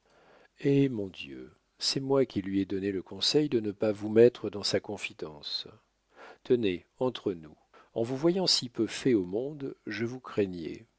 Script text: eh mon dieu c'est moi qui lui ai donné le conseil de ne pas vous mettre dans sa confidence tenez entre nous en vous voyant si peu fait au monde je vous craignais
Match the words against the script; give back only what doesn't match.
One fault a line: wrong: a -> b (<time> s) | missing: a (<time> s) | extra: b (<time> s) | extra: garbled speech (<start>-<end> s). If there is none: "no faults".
no faults